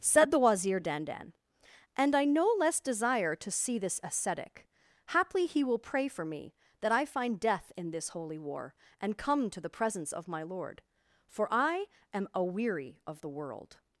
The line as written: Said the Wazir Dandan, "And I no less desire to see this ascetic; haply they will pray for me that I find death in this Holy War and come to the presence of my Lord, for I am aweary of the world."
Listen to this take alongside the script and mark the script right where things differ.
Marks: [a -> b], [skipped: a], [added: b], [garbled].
Said the Wazir Dandan, "And I no less desire to see this ascetic; haply [they -> he] will pray for me that I find death in this Holy War and come to the presence of my Lord, for I am aweary of the world."